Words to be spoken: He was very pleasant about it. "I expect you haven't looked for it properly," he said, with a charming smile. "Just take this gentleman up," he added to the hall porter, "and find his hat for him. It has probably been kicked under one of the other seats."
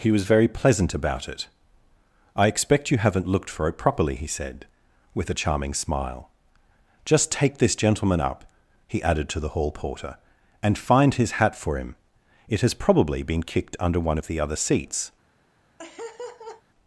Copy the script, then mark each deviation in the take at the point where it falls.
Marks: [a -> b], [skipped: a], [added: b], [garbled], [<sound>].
He was very pleasant about it. "I expect you haven't looked for it properly," he said, with a charming smile. "Just take this gentleman up," he added to the hall porter, "and find his hat for him. It has probably been kicked under one of the other seats." [laugh]